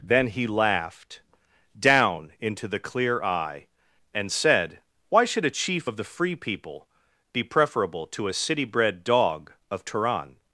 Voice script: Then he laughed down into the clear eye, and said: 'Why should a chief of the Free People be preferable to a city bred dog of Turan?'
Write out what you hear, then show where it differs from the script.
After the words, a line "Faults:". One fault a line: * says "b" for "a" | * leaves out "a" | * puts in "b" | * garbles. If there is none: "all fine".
Then he laughed down into the clear eye, and said: 'Why should a chief of the Free People be preferable to a city bred dog of Turan?'
Faults:
all fine